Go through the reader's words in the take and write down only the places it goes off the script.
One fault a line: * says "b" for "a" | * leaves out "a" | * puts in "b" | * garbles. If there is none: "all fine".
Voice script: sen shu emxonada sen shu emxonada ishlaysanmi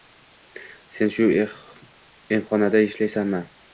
* leaves out "sen shu emxonada"